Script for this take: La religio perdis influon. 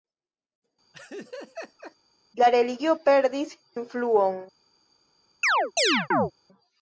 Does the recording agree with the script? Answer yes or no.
yes